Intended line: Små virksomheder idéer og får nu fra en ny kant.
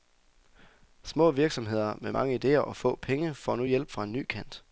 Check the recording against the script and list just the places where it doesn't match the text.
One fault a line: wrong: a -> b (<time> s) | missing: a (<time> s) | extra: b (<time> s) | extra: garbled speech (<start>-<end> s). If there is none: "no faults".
extra: med mange (2.0 s)
extra: få penge (2.8 s)
extra: hjælp (3.6 s)